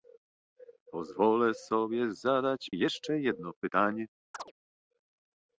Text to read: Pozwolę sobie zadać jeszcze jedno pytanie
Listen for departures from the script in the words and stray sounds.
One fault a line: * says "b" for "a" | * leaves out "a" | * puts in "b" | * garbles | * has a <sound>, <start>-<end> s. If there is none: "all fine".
* has a chirp, 4.3-4.5 s